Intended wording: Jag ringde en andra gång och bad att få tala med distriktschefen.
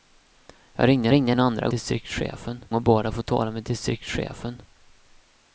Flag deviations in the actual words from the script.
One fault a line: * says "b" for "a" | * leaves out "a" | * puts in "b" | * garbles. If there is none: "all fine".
* puts in "ringde"
* says "distriktschefen" for "gång"